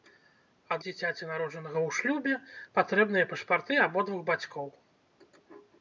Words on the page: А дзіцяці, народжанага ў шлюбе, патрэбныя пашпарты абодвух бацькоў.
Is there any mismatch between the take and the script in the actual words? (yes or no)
no